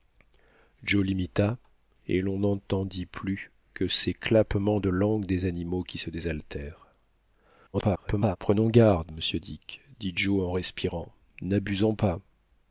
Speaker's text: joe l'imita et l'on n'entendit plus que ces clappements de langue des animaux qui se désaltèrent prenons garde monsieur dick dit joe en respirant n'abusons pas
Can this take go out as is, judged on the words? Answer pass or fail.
fail